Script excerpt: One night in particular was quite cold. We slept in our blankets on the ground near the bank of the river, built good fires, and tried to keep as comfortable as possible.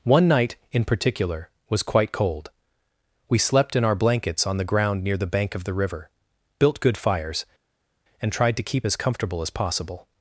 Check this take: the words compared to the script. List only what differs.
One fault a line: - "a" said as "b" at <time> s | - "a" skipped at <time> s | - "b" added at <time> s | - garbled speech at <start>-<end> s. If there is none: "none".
none